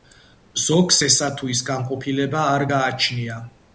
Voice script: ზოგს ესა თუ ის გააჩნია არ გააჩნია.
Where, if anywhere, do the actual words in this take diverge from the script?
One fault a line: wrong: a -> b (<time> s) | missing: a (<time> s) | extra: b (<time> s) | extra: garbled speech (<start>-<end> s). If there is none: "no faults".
wrong: გააჩნია -> განყოფილება (1.7 s)